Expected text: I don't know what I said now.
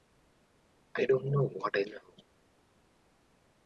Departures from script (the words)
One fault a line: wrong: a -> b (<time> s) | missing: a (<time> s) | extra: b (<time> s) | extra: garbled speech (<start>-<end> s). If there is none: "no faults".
missing: said (1.8 s)